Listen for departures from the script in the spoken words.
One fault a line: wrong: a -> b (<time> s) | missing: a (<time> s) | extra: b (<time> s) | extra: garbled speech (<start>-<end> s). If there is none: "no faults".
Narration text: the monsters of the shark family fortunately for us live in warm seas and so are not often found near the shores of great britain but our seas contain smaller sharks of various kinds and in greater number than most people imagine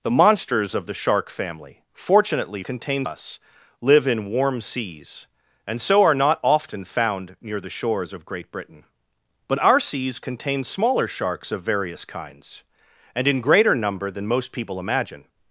wrong: for -> contain (2.6 s)